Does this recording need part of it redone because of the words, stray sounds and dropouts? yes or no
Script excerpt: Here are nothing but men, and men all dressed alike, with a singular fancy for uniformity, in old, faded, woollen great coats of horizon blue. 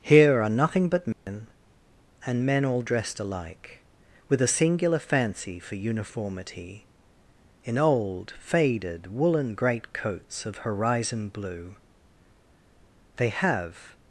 yes